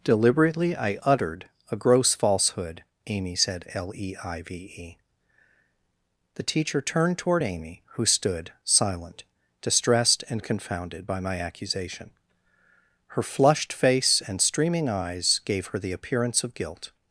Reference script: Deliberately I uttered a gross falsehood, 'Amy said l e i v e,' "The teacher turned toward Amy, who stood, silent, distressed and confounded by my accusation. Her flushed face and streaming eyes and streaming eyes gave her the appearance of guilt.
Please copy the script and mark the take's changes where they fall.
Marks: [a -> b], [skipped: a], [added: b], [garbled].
Deliberately I uttered a gross falsehood, 'Amy said l e i v e,' "The teacher turned toward Amy, who stood, silent, distressed and confounded by my accusation. Her flushed face and streaming eyes [skipped: and streaming eyes] gave her the appearance of guilt.